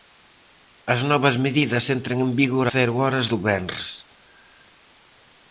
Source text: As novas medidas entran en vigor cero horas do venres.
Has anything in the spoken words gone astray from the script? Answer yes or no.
no